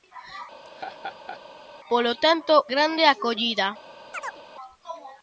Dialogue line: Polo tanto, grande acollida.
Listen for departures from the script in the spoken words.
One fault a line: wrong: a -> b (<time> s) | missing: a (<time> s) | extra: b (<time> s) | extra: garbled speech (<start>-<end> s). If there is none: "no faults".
no faults